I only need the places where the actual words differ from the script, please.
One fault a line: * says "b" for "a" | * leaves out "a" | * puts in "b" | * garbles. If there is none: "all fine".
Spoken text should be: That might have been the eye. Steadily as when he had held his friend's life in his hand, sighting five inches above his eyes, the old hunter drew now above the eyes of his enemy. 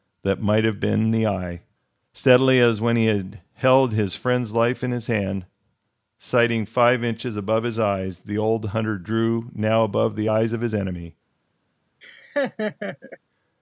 all fine